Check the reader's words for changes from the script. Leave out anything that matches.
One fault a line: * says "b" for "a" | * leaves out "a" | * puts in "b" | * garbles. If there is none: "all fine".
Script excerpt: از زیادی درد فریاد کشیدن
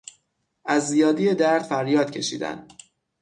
all fine